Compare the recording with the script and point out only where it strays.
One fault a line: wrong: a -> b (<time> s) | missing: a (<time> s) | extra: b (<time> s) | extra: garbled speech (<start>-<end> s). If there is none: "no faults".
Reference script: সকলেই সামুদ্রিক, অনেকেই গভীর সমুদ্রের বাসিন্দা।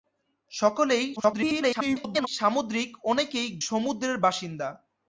extra: garbled speech (1.2-2.3 s)
missing: গভীর (3.5 s)